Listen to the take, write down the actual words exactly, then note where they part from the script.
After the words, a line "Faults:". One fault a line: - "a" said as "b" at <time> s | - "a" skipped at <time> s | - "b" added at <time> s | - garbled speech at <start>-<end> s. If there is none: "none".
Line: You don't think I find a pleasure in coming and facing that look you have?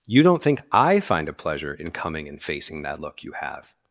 You don't think I find a pleasure in coming and facing that look you have?
Faults:
none